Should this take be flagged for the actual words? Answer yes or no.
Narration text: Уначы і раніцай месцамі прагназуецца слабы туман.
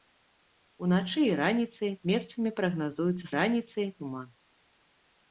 yes